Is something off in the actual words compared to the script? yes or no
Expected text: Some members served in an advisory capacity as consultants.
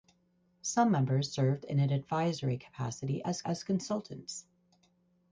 yes